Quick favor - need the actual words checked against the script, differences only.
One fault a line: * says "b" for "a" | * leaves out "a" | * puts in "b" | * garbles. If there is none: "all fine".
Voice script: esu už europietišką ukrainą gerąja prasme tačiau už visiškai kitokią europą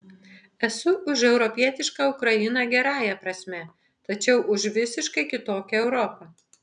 all fine